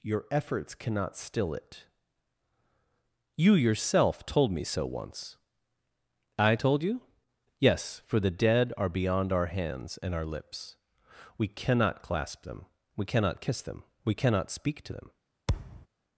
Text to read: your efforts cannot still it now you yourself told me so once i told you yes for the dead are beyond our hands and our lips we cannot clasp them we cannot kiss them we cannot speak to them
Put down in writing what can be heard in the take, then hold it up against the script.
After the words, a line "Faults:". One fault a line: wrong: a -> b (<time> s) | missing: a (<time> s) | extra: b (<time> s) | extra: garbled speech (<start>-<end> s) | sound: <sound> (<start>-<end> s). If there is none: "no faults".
your efforts cannot still it you yourself told me so once i told you yes for the dead are beyond our hands and our lips we cannot clasp them we cannot kiss them we cannot speak to them
Faults:
missing: now (1.9 s)
sound: thud (15.5-15.9 s)